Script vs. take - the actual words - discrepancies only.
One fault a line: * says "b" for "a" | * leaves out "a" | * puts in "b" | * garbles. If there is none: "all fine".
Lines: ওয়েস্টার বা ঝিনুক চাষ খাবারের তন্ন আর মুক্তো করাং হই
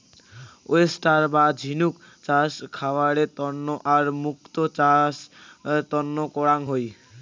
* puts in "চাষ তন্ন"